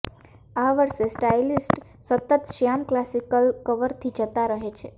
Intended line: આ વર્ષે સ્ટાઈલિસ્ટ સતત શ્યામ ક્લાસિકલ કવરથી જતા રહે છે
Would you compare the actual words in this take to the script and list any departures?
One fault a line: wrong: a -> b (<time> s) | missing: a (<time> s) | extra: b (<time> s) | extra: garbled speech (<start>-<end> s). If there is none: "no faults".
no faults